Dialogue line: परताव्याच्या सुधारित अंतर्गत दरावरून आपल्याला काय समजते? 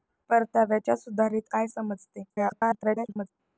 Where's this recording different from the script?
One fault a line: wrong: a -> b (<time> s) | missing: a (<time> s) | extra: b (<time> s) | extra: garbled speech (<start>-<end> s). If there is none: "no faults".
missing: अंतर्गत दरावरून आपल्याला (1.5 s)
extra: garbled speech (2.3-3.3 s)